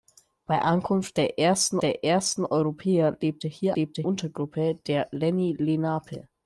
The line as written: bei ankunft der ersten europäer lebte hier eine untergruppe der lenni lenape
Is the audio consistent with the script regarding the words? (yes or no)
no